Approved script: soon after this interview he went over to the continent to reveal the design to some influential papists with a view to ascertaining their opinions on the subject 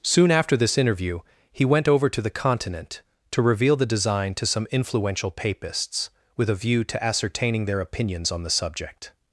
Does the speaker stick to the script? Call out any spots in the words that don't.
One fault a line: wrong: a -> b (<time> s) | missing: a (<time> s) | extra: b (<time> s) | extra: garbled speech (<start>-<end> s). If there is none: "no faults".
no faults